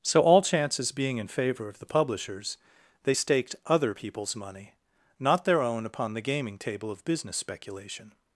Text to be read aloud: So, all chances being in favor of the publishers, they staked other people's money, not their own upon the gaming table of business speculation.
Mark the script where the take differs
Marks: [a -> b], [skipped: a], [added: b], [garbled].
So, all chances being in favor of the publishers, they staked other people's money, not their own upon the gaming table of business speculation.